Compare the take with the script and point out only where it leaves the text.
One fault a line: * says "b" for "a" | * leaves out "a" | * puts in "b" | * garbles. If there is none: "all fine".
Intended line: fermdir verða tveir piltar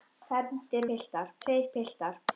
* says "piltar" for "verða"